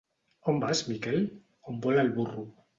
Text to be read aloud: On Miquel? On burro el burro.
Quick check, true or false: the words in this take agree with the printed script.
false